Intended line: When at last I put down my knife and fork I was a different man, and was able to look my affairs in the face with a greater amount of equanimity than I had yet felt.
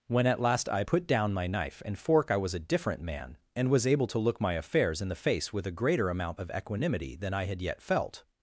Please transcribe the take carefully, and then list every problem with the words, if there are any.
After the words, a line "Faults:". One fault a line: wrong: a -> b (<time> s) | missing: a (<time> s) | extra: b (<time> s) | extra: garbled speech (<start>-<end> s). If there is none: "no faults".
When at last I put down my knife and fork I was a different man, and was able to look my affairs in the face with a greater amount of equanimity than I had yet felt.
Faults:
no faults